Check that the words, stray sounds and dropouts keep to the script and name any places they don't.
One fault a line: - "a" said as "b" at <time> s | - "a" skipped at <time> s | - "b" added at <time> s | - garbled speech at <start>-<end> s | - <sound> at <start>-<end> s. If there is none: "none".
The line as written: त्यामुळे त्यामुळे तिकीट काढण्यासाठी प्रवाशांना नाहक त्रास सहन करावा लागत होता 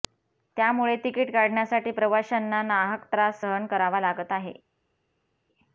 - "त्यामुळे" skipped at 0.9 s
- "होता" said as "आहे" at 4.3 s